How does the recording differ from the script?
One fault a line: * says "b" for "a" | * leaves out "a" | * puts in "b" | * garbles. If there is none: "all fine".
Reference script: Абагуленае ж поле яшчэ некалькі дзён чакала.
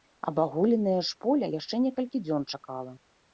all fine